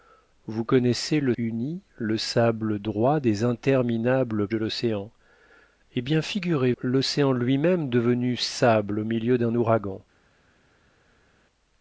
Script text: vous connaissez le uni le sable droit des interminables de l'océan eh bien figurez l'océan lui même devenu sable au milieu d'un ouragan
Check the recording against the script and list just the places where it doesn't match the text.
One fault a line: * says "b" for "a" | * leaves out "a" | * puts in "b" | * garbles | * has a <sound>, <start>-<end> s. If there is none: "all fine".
all fine